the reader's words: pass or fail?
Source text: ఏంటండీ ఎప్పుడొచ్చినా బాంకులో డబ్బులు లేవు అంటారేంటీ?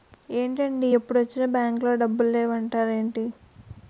pass